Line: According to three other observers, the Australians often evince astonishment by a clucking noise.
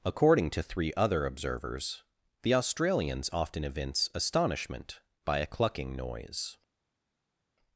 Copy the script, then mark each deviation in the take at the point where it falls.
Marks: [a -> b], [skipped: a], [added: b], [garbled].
According to three other observers, the Australians often evince astonishment by a clucking noise.